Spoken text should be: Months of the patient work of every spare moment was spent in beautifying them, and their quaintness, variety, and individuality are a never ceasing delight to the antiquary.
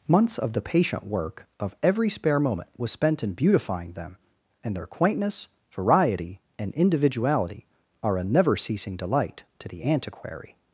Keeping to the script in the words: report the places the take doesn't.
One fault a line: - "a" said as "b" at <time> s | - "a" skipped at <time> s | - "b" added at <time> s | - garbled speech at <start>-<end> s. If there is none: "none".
none